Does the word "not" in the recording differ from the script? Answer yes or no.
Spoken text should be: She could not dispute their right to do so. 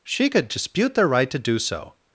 yes